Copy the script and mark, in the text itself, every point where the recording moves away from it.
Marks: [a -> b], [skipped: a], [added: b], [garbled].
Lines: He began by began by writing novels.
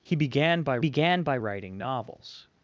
He began by began by writing novels.